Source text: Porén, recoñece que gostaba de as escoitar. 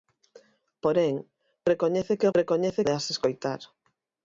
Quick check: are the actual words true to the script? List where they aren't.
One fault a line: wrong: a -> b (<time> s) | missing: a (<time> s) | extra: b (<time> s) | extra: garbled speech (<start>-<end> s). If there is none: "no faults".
wrong: gostaba -> recoñece (2.4 s)